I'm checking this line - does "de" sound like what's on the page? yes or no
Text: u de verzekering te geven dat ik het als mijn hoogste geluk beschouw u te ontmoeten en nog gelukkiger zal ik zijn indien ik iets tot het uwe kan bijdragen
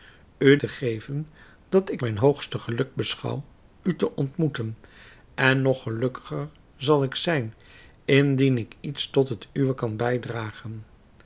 no